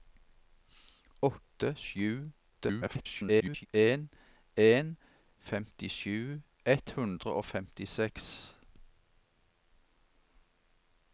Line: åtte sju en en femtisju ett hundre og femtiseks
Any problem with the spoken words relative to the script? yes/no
yes